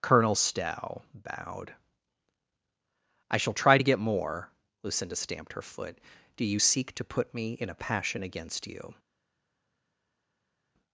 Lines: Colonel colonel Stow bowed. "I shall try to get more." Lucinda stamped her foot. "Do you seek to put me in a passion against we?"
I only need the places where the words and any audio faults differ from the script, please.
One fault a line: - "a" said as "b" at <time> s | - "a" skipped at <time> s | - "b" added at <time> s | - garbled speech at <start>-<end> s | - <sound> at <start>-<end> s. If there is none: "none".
- "colonel" skipped at 0.3 s
- "we" said as "you" at 8.7 s